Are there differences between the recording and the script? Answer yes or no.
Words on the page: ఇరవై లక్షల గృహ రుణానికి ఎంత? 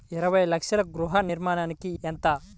no